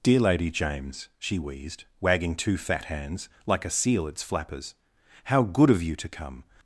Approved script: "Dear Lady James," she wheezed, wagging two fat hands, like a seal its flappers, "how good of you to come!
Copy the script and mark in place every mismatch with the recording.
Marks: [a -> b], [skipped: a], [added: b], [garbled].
"Dear Lady James," she wheezed, wagging two fat hands, like a seal its flappers, "how good of you to come!